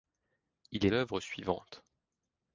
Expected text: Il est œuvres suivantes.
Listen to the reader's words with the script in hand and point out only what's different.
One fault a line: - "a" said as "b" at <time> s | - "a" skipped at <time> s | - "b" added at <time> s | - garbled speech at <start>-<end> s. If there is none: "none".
none